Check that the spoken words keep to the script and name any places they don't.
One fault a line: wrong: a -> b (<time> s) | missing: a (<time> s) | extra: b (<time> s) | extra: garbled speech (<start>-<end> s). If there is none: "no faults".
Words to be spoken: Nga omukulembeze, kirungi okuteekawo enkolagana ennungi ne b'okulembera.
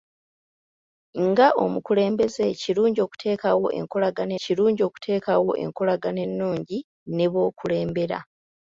extra: kirungi okuteekawo enkolagana (4.4 s)